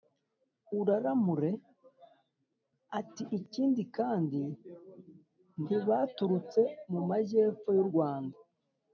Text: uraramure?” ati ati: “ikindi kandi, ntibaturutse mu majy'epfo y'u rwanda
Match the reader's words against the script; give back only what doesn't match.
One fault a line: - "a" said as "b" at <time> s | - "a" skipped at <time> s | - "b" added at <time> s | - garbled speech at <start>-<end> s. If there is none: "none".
- "ati" skipped at 3.2 s